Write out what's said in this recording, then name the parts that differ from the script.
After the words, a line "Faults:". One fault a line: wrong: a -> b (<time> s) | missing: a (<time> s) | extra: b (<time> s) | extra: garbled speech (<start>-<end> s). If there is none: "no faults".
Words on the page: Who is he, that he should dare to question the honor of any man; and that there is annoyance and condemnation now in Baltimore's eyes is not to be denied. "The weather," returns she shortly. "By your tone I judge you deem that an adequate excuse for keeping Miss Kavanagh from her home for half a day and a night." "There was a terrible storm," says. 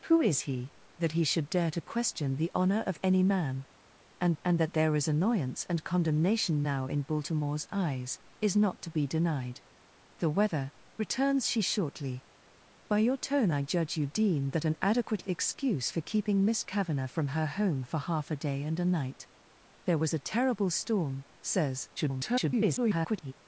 Who is he, that he should dare to question the honor of any man; and and that there is annoyance and condemnation now in Baltimore's eyes is not to be denied. "The weather," returns she shortly. "By your tone I judge you deem that an adequate excuse for keeping Miss Kavanagh from her home for half a day and a night." "There was a terrible storm," says. [garbled]
Faults:
extra: and (4.4 s)
extra: garbled speech (22.0-23.3 s)